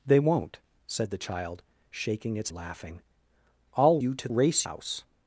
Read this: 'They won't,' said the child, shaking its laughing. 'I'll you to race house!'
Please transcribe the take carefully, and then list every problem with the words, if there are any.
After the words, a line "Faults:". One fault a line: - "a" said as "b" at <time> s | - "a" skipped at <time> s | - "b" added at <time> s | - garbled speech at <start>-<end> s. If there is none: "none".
'They won't,' said the child, shaking its laughing. 'I'll you to race house!'
Faults:
none